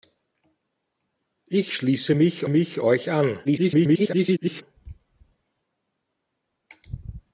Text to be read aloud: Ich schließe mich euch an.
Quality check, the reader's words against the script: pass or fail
fail